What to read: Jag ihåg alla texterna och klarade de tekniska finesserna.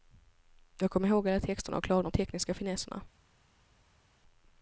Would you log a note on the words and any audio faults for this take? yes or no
yes